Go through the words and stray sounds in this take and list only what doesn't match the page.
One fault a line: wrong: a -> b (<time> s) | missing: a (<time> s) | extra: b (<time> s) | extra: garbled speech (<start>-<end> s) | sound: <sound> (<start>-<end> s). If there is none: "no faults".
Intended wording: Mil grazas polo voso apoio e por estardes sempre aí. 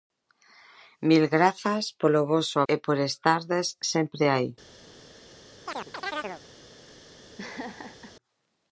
missing: apoio (2.6 s)
sound: chirp (5.7-6.4 s)
sound: laugh (7.4-8.1 s)